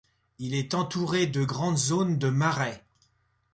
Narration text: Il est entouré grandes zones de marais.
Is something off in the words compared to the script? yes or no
yes